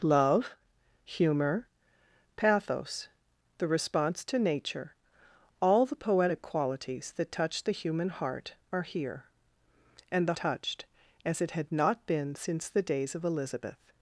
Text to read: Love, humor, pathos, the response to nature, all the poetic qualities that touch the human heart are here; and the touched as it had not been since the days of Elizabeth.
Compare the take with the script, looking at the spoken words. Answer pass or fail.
pass